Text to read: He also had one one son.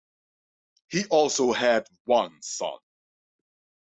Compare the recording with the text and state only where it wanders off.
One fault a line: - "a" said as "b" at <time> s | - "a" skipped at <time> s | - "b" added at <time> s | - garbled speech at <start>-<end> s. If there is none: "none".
- "one" skipped at 2.3 s